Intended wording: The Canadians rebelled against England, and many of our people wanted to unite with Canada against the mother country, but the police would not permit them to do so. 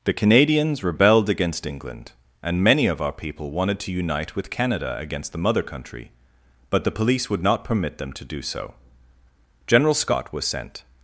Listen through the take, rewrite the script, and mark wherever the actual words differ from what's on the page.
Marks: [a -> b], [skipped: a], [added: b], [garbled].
The Canadians rebelled against England, and many of our people wanted to unite with Canada against the mother country, but the police would not permit them to do so. [added: General Scott was sent]